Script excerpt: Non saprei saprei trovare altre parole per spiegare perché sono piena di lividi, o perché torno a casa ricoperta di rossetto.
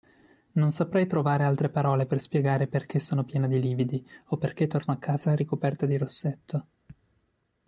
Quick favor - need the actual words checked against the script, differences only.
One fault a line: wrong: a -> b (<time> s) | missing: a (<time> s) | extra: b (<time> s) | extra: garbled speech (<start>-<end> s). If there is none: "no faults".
missing: saprei (1.1 s)